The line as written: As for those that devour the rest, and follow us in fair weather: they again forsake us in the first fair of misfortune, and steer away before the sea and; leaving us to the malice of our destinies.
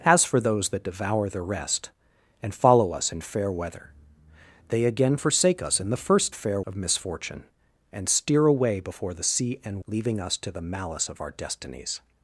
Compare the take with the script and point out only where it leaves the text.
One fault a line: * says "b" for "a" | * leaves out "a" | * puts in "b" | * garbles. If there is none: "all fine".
all fine